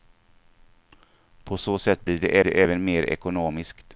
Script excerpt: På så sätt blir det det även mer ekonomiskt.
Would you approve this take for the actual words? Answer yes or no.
yes